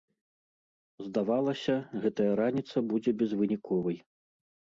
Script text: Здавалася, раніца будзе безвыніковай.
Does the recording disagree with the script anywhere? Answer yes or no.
yes